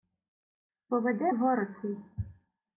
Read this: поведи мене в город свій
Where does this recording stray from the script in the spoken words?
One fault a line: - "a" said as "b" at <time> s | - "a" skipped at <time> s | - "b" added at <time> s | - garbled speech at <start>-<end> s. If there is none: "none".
- "мене" skipped at 1.3 s